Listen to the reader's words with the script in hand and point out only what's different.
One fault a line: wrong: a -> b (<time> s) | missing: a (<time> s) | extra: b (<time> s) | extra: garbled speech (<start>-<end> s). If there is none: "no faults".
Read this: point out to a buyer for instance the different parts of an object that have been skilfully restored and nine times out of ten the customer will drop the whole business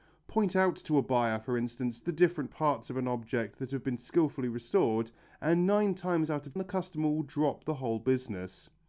missing: ten (6.6 s)